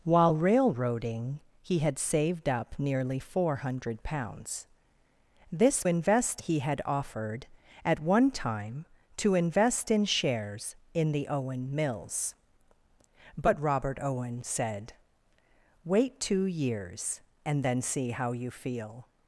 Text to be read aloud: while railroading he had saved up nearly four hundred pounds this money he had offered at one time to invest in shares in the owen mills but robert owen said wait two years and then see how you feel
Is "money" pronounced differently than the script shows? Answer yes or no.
yes